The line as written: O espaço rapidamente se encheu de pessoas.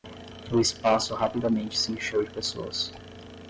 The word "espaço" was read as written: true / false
true